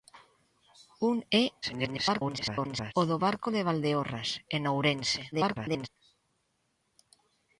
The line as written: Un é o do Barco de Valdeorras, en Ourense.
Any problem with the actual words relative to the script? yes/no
yes